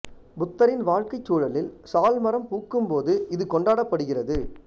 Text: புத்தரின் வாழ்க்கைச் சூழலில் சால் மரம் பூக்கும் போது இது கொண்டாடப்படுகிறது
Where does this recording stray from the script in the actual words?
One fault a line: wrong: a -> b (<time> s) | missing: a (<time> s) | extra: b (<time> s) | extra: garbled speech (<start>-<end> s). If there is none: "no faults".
no faults